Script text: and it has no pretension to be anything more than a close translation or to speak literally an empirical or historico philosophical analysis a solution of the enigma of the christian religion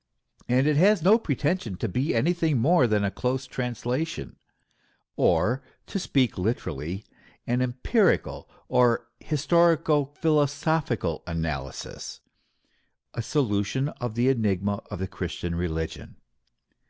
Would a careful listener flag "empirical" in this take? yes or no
no